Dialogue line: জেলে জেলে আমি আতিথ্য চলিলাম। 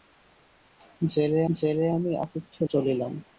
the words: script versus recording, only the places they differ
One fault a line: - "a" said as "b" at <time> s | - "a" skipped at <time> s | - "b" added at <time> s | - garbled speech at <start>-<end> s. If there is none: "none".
none